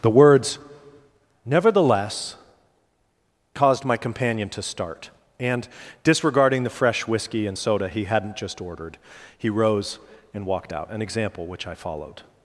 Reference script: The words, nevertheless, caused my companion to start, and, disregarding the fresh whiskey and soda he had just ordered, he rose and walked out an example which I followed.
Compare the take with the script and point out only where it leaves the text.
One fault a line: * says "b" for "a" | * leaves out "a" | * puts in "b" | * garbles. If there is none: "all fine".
* says "hadn't" for "had"